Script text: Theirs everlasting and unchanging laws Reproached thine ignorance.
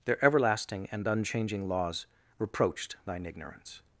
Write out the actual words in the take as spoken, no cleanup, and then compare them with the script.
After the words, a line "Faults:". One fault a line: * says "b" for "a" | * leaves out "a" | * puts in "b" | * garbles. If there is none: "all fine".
Their everlasting and unchanging laws Reproached thine ignorance.
Faults:
* says "Their" for "Theirs"